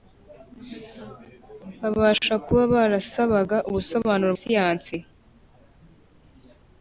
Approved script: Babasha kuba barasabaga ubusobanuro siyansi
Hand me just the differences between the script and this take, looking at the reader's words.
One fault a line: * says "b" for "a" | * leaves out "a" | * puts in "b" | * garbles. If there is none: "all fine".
all fine